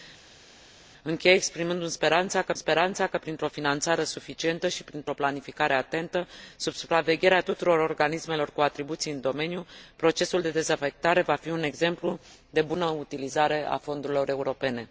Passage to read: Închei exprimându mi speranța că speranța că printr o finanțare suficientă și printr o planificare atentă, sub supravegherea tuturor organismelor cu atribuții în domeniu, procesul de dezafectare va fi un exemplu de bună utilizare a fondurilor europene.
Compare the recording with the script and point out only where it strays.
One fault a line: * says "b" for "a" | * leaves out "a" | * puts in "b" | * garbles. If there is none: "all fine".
all fine